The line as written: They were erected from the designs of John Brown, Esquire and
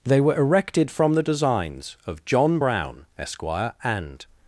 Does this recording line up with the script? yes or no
yes